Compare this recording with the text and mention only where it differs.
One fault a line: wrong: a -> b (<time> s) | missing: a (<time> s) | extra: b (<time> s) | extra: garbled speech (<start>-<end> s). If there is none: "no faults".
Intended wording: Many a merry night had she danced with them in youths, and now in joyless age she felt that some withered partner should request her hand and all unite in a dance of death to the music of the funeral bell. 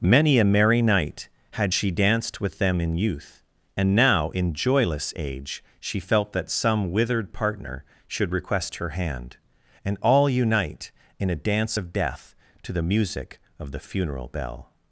wrong: youths -> youth (3.0 s)